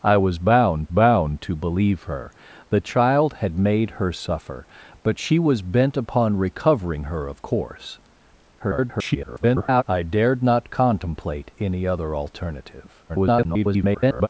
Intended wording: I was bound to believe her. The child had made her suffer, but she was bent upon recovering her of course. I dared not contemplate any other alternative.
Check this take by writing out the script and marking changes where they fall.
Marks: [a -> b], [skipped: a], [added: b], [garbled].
I was bound [added: bound] to believe her. The child had made her suffer, but she was bent upon recovering her of course. [garbled] I dared not contemplate any other alternative. [garbled]